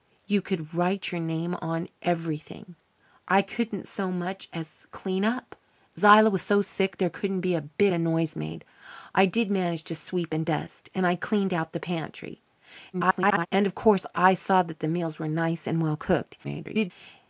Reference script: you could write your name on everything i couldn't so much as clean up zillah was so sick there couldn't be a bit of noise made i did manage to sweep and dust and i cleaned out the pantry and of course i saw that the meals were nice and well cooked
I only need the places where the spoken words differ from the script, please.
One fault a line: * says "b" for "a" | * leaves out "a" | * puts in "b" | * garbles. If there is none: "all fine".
* garbles
* garbles